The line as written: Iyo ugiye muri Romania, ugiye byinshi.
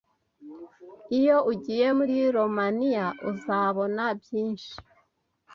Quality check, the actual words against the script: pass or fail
fail